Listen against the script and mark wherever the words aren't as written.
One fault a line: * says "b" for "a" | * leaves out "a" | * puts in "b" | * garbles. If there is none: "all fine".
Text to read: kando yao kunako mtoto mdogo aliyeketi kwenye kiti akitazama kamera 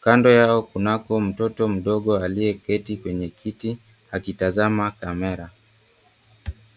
all fine